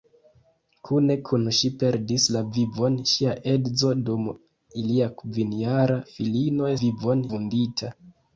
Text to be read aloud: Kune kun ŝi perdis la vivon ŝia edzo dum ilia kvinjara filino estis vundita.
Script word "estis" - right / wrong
wrong